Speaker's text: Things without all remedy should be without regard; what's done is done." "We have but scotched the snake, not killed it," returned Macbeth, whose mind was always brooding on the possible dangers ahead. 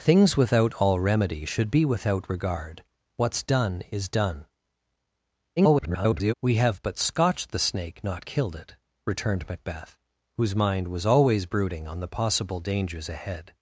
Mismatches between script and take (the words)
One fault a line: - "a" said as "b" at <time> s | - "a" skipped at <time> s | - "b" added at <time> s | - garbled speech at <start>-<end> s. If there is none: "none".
- garbled speech at 5.6-6.3 s